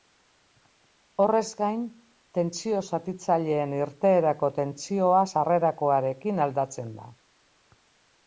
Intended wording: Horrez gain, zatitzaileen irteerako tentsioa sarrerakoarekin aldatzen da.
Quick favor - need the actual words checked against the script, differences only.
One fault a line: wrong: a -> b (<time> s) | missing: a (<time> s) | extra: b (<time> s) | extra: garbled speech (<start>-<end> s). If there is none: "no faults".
extra: tentsio (2.4 s)